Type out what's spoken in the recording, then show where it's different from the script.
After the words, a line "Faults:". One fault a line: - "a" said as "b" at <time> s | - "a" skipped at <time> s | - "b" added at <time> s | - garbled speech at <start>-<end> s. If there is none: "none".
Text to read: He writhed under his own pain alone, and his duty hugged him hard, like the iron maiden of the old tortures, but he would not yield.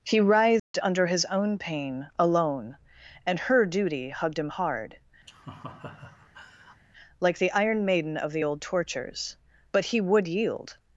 He writhed under his own pain alone, and her duty hugged him hard, like the iron maiden of the old tortures, but he would yield.
Faults:
- "his" said as "her" at 3.4 s
- "not" skipped at 10.3 s